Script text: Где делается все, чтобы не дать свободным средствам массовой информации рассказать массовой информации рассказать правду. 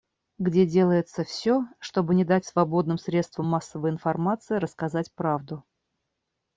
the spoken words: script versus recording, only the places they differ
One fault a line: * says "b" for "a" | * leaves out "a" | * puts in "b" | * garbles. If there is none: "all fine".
* leaves out "массовой информации рассказать"